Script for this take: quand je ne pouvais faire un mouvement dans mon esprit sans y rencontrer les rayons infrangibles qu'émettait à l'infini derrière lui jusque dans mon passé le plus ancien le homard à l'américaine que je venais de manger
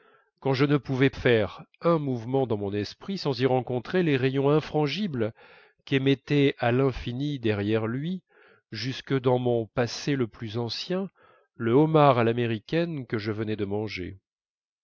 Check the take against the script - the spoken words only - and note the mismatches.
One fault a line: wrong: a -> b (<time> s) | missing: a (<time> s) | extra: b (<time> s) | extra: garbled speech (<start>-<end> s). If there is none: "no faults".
no faults